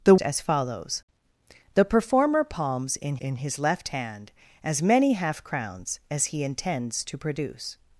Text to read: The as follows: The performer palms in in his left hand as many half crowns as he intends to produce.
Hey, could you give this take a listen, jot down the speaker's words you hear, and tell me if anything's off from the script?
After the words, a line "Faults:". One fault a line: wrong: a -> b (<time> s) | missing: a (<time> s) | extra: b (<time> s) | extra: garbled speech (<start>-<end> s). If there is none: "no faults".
The as follows: The performer palms in in his left hand as many half crowns as he intends to produce.
Faults:
no faults